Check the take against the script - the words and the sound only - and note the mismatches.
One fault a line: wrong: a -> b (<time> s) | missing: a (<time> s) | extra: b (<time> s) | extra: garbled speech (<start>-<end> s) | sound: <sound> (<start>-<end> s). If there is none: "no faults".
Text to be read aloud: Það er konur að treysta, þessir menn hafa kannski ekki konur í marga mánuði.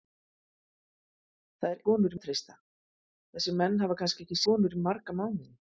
no faults